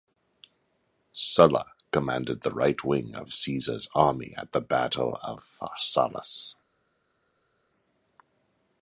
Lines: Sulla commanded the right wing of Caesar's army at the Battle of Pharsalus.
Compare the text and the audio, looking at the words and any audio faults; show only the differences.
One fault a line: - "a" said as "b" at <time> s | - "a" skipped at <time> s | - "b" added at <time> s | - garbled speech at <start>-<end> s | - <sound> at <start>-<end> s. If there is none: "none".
none